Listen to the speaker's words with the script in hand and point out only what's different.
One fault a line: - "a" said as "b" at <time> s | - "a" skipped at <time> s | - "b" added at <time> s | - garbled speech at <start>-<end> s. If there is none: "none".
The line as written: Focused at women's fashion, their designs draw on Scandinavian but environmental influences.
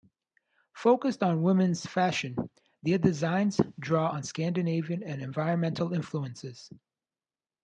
- "at" said as "on" at 1.2 s
- "but" said as "and" at 5.0 s